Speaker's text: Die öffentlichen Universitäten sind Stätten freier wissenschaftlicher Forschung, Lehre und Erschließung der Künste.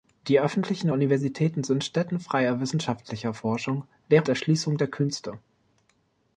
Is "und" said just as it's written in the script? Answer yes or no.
no